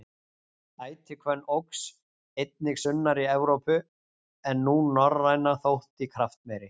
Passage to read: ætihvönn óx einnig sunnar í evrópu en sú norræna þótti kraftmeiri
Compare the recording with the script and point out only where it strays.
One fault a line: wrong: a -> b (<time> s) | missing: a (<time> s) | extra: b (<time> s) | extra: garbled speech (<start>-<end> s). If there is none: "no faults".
no faults